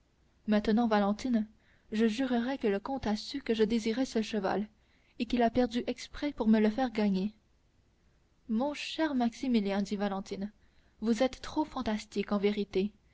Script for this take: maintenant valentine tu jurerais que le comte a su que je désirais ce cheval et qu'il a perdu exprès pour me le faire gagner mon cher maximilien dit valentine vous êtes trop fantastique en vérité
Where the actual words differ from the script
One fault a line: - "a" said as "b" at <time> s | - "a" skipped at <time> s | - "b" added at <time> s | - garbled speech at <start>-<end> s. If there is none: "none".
- "tu" said as "je" at 1.9 s